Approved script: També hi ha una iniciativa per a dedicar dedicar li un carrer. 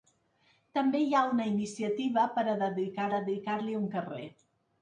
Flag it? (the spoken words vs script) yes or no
no